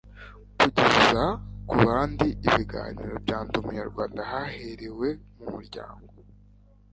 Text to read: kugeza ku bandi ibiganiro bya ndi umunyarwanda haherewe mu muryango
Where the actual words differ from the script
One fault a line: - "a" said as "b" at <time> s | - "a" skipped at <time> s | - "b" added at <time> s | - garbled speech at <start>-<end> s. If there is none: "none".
none